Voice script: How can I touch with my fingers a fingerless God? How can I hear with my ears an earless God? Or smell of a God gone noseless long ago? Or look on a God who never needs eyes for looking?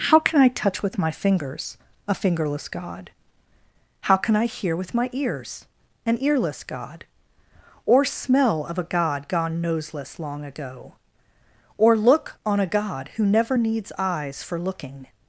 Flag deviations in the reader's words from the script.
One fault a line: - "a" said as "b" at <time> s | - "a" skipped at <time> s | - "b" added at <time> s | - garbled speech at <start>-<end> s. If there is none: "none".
none